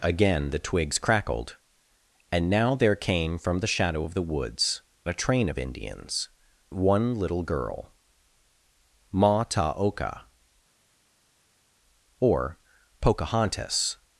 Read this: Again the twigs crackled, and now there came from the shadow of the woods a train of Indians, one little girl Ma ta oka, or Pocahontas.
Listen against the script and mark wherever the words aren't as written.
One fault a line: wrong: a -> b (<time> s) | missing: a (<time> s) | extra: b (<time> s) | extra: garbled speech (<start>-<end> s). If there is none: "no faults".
no faults